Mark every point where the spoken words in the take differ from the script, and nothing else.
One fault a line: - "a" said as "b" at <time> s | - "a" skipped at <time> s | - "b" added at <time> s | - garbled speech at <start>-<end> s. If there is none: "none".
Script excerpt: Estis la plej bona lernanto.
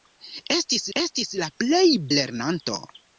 - "estis" added at 1.0 s
- "bona" skipped at 1.9 s